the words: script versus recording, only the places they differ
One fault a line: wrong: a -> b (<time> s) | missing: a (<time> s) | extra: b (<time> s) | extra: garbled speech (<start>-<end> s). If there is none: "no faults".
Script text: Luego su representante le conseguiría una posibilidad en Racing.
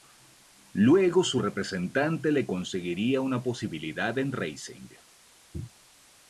no faults